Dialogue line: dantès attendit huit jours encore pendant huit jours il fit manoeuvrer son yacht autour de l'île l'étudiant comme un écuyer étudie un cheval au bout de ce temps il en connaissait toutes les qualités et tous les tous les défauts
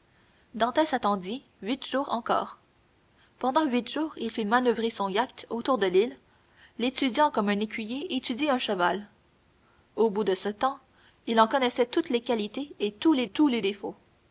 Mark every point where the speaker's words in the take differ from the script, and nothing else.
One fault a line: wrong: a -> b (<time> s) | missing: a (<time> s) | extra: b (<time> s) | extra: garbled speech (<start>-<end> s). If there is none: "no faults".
no faults